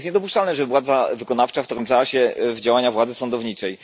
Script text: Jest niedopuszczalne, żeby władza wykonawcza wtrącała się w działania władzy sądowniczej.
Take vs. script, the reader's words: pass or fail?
pass